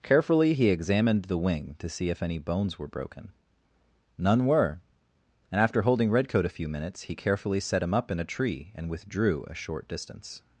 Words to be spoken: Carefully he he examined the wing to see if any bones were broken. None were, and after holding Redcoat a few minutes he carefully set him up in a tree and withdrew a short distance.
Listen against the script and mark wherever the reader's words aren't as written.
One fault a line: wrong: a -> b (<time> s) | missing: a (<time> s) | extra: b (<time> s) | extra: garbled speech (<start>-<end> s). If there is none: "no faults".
missing: he (0.7 s)